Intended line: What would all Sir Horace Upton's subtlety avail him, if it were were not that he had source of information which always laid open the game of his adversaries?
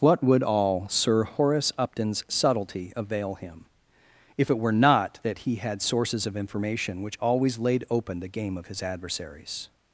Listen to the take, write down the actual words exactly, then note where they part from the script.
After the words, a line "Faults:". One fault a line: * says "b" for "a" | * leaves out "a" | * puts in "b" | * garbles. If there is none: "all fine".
What would all Sir Horace Upton's subtlety avail him, if it were not that he had sources of information which always laid open the game of his adversaries?
Faults:
* leaves out "were"
* says "sources" for "source"